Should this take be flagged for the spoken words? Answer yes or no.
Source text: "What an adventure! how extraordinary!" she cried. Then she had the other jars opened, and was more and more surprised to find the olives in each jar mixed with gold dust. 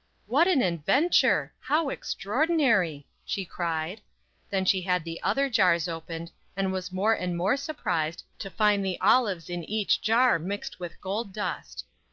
no